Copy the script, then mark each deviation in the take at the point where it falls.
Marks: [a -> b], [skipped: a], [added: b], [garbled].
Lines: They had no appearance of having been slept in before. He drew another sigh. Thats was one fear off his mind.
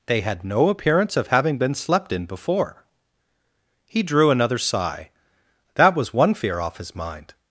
They had no appearance of having been slept in before. He drew another sigh. [Thats -> That] was one fear off his mind.